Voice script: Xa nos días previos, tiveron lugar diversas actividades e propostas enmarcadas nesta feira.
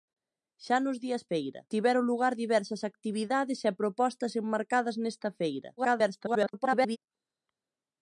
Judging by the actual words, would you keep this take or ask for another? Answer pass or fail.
fail